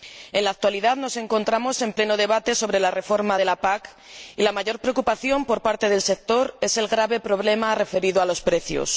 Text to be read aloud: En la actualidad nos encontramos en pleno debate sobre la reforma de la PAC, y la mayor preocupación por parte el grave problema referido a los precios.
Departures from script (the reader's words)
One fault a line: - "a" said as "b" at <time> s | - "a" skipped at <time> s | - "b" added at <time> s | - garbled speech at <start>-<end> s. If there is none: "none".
- "del sector es" added at 5.9 s